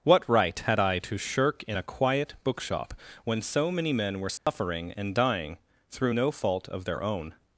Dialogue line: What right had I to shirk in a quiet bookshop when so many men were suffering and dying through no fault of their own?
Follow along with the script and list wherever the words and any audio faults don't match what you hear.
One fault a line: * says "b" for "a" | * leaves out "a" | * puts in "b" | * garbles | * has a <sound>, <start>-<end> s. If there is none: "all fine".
* has a dropout, 4.4-4.5 s